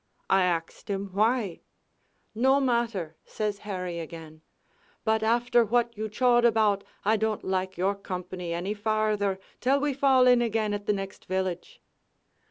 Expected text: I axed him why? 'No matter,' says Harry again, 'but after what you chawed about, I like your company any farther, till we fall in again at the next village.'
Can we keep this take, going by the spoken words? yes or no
no